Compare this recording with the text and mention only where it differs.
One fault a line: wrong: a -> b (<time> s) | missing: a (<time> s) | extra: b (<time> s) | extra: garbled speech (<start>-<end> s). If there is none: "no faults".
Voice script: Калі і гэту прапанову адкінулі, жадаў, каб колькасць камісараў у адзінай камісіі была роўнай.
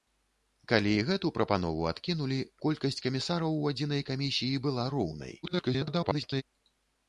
missing: жадаў каб (2.4 s)
extra: garbled speech (5.4-6.4 s)